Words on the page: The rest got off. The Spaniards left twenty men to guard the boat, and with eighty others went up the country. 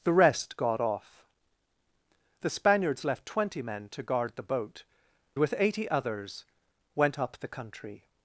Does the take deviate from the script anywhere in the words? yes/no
yes